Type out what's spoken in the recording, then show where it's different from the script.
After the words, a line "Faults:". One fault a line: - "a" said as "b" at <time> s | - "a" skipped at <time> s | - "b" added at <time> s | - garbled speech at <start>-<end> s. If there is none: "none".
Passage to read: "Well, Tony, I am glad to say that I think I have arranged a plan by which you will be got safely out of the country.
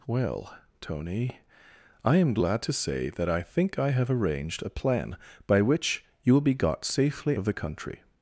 "Well, Tony, I am glad to say that I think I have arranged a plan by which you will be got safely of the country.
Faults:
- "out" skipped at 7.4 s